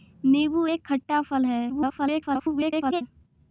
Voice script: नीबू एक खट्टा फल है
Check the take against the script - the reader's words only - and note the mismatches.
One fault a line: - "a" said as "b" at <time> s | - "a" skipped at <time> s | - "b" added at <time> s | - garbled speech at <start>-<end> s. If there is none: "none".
- garbled speech at 1.7-3.0 s